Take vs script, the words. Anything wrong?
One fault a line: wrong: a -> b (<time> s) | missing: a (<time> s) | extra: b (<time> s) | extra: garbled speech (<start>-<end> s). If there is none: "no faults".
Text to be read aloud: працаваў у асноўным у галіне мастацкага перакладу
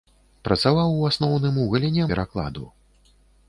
missing: мастацкага (2.1 s)